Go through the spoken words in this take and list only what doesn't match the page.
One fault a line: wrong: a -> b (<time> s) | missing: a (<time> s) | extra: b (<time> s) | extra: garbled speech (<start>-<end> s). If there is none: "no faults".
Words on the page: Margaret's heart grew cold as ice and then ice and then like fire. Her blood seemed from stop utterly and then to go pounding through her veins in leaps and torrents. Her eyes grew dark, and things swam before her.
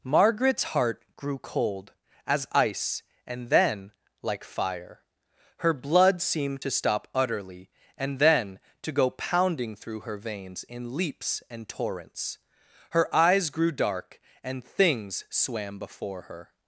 missing: ice and then (3.9 s)
wrong: from -> to (6.6 s)